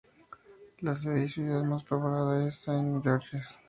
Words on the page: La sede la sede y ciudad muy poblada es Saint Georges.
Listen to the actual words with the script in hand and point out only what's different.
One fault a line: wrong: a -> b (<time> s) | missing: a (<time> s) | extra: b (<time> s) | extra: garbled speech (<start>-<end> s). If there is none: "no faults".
missing: la sede (1.2 s)
wrong: muy -> más (1.6 s)